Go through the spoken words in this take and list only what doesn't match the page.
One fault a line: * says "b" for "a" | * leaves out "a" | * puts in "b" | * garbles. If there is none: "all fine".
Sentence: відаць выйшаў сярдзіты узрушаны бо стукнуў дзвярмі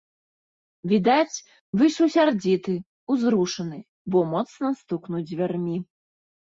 * puts in "моцна"